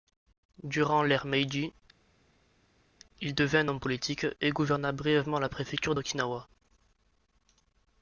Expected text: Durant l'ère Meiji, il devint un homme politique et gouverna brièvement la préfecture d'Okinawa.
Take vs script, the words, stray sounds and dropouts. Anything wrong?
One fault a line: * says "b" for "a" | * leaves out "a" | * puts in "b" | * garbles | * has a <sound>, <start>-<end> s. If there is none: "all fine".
all fine